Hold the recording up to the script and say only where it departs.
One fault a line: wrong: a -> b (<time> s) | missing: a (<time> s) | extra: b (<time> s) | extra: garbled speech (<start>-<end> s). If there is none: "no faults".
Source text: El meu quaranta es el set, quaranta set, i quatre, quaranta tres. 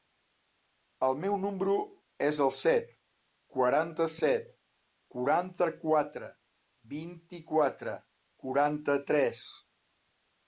wrong: quaranta -> número (1.4 s)
extra: quaranta quatre vint (5.2 s)